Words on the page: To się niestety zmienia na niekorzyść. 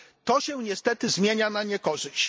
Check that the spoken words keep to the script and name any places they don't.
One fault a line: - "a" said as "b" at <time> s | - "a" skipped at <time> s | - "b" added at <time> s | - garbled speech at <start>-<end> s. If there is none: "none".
none